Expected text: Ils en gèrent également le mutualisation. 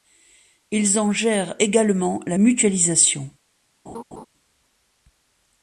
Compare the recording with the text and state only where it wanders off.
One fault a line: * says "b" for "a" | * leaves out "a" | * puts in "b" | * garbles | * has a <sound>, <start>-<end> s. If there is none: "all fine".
* says "la" for "le"
* has a laugh, 3.9-4.3 s